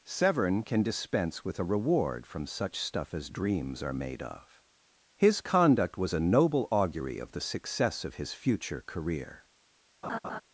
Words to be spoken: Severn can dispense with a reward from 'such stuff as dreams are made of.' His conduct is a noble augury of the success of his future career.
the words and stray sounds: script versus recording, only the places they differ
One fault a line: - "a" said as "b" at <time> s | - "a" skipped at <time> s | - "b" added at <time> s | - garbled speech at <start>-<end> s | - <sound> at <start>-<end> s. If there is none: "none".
- "is" said as "was" at 6.0 s
- laugh at 10.0-10.4 s